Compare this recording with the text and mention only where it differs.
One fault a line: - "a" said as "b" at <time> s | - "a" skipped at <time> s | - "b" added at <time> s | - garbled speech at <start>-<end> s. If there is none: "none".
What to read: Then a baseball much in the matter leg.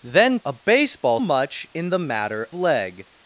none